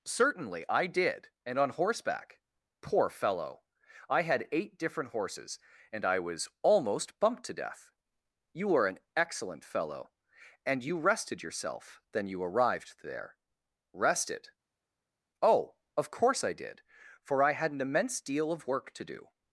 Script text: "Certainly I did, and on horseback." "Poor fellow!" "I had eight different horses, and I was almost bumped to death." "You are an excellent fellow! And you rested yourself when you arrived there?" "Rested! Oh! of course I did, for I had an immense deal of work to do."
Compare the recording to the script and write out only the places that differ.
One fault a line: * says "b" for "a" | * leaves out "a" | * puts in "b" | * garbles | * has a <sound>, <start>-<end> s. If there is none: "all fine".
* says "then" for "when"